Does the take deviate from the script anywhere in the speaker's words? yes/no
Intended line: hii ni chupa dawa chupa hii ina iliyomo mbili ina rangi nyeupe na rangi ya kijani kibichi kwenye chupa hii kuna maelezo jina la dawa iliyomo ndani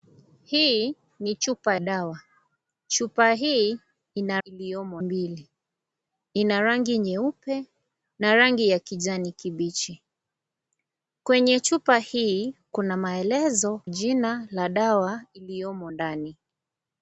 no